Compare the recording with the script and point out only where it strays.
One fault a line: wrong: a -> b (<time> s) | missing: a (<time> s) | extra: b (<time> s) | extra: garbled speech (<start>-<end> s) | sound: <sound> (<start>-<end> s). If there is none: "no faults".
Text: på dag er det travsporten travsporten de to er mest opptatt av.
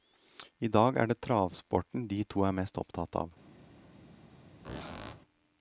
wrong: på -> I (0.6 s)
missing: travsporten (2.1 s)
sound: squeak (4.6-5.2 s)